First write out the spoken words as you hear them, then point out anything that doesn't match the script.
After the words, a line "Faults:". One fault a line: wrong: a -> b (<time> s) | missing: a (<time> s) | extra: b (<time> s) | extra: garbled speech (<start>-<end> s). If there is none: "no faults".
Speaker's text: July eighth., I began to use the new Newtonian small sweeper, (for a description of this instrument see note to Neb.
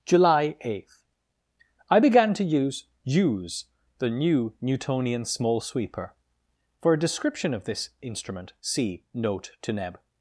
July eighth., I began to use use the new Newtonian small sweeper, (for a description of this instrument see note to Neb.
Faults:
extra: use (3.0 s)